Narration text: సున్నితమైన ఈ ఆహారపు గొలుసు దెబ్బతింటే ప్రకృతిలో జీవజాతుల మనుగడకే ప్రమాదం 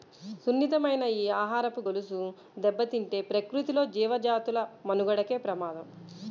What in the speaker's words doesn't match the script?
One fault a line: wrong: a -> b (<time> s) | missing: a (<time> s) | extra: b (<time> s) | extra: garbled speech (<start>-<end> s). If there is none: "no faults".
no faults